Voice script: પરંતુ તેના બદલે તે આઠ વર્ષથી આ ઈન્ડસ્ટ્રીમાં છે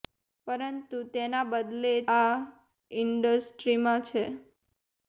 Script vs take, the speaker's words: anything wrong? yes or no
yes